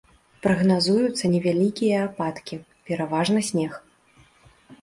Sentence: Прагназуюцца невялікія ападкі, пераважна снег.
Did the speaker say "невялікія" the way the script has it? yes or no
yes